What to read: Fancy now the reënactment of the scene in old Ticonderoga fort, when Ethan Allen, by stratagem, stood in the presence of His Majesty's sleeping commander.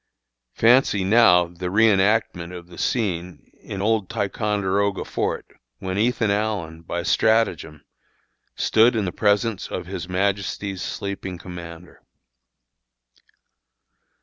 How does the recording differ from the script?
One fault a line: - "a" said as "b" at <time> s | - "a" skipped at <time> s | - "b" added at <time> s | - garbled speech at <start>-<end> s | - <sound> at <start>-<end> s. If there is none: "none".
none